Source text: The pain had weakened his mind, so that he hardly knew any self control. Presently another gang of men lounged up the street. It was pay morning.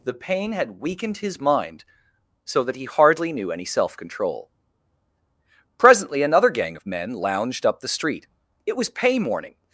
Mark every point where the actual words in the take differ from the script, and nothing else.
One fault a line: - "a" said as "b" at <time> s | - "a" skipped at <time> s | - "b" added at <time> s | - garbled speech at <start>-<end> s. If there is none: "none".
none